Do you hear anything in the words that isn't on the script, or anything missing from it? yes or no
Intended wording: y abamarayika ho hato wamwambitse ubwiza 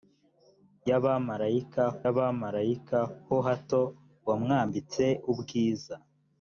yes